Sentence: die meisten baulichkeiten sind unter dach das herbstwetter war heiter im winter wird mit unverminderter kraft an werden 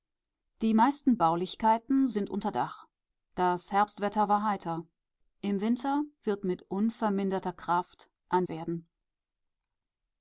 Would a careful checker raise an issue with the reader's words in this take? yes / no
no